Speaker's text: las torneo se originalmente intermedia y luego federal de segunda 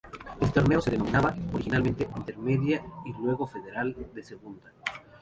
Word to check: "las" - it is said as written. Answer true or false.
false